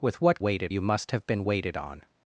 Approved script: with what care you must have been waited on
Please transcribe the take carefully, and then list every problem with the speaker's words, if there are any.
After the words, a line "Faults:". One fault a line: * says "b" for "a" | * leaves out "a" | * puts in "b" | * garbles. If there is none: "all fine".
with what waited you must have been waited on
Faults:
* says "waited" for "care"